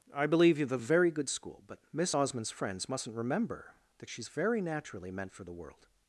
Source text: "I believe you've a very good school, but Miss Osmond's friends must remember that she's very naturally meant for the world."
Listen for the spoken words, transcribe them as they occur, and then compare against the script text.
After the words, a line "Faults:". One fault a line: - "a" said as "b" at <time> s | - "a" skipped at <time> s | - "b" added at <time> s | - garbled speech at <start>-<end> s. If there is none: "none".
"I believe you've a very good school, but Miss Osmond's friends mustn't remember that she's very naturally meant for the world."
Faults:
- "must" said as "mustn't" at 2.9 s